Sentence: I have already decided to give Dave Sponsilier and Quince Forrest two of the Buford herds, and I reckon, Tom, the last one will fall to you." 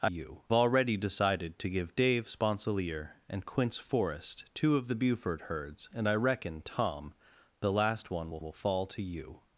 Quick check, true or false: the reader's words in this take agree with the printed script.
false